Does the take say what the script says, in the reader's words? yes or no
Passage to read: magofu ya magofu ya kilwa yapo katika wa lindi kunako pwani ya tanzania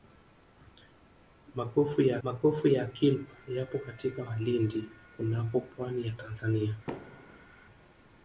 yes